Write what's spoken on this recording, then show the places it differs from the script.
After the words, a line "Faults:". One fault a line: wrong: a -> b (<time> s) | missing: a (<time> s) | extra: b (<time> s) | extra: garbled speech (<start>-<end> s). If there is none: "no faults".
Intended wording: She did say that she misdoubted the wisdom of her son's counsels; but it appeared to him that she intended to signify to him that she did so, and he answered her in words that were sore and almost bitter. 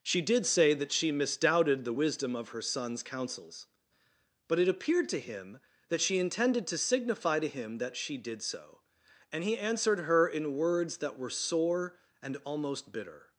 She did say that she misdoubted the wisdom of her son's counsels; but it appeared to him that she intended to signify to him that she did so, and he answered her in words that were sore and almost bitter.
Faults:
no faults